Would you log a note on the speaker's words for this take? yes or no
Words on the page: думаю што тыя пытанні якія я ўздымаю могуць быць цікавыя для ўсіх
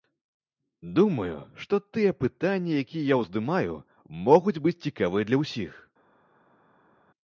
no